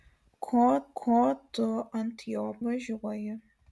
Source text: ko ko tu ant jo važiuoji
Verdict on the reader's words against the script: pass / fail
pass